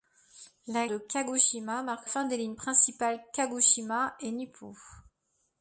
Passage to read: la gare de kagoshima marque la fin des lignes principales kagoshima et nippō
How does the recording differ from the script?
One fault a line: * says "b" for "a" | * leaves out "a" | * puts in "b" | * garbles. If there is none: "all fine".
* leaves out "gare"
* leaves out "la"